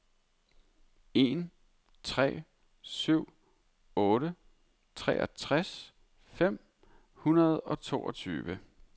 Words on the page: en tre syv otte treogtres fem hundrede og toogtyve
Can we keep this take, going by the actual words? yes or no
yes